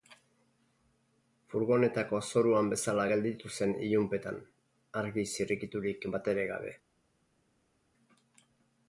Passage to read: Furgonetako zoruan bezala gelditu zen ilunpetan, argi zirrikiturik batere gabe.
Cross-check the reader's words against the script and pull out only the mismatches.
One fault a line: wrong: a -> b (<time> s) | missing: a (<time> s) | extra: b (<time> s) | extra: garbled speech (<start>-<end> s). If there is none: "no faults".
no faults